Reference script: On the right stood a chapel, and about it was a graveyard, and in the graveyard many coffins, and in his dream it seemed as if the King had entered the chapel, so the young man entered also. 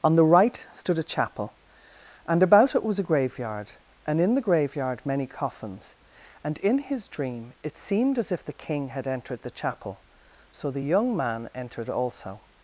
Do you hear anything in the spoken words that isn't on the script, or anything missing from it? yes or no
no